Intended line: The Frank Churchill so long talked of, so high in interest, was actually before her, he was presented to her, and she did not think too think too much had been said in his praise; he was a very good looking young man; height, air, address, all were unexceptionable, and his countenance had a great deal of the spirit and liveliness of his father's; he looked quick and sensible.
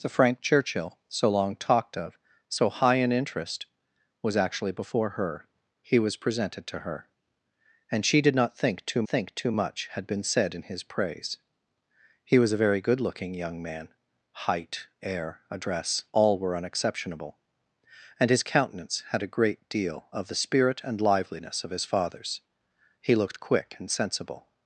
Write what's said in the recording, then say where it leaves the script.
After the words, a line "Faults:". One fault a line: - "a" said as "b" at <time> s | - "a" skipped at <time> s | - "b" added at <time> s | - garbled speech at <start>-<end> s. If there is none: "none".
The Frank Churchill so long talked of, so high in interest, was actually before her, he was presented to her, and she did not think too think too much had been said in his praise; he was a very good looking young man; height, air, address, all were unexceptionable, and his countenance had a great deal of the spirit and liveliness of his father's; he looked quick and sensible.
Faults:
none